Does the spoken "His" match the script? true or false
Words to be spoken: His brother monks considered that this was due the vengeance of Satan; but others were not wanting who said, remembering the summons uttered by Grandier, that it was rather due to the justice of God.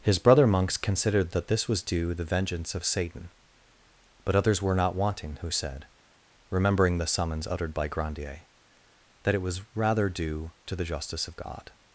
true